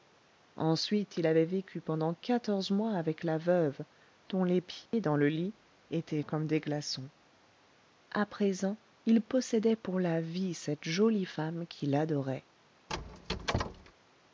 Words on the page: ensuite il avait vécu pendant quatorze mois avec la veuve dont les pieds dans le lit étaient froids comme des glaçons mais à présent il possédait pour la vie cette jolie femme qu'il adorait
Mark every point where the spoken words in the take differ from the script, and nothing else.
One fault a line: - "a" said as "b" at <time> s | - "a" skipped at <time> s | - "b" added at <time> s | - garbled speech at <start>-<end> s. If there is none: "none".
- "froids" skipped at 6.2 s
- "mais" skipped at 7.1 s